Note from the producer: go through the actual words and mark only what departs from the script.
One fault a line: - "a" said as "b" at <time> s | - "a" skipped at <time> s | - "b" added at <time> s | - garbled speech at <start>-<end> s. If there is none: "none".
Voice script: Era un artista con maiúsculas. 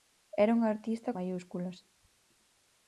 - "con" skipped at 1.1 s